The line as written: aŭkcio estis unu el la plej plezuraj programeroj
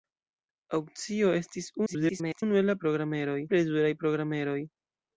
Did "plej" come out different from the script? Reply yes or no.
yes